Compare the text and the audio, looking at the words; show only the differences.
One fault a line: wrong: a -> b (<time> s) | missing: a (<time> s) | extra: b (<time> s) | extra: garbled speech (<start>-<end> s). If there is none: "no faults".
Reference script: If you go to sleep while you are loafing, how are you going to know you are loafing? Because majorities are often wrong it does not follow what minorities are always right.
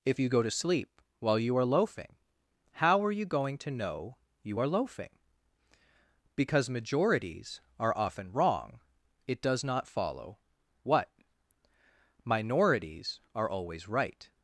no faults